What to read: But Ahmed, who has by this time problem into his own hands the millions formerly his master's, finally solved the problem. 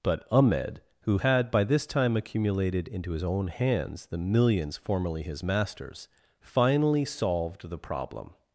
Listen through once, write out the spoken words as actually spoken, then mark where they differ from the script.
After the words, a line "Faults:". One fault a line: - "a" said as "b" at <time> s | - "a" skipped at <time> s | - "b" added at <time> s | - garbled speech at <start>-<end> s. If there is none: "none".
But Ahmed, who had by this time accumulated into his own hands the millions formerly his master's, finally solved the problem.
Faults:
- "has" said as "had" at 1.2 s
- "problem" said as "accumulated" at 2.2 s